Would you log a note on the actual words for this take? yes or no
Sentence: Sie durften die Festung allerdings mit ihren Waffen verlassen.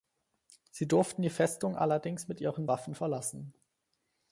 no